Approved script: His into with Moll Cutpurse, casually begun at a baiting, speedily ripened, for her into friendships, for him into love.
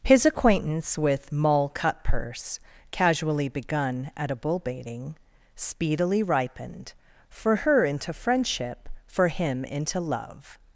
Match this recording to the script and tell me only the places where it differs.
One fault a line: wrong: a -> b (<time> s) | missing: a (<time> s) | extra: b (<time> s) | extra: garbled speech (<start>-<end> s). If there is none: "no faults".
wrong: into -> acquaintance (0.2 s)
extra: bull (4.3 s)
wrong: friendships -> friendship (8.1 s)